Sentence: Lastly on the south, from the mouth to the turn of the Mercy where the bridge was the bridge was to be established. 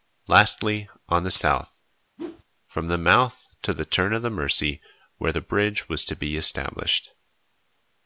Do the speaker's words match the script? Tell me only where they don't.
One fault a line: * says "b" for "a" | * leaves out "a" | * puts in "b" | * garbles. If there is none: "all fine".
* leaves out "the bridge was"